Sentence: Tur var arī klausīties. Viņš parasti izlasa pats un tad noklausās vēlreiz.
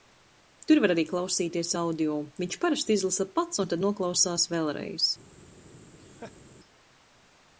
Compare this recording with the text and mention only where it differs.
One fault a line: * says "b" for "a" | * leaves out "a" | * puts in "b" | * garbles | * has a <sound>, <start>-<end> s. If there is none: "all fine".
* puts in "audio"
* has a laugh, 6.0-6.4 s